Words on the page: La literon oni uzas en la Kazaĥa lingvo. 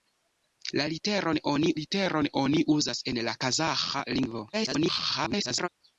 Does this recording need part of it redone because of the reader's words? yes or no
yes